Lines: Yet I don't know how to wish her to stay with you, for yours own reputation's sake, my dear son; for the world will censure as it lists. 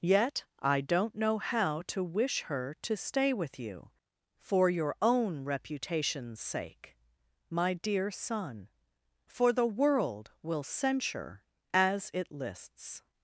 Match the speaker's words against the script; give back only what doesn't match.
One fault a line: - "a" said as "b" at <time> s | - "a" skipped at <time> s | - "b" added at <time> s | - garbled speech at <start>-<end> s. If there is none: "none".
- "yours" said as "your" at 4.7 s